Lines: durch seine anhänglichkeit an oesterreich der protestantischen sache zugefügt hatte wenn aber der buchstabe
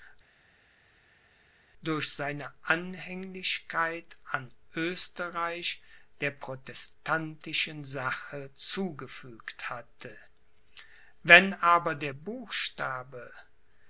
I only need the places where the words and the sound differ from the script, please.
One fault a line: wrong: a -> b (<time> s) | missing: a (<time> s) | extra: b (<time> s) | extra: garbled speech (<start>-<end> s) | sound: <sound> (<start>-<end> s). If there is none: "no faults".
no faults